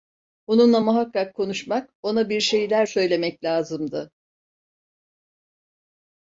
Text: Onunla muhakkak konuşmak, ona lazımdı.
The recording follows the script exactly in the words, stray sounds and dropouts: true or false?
false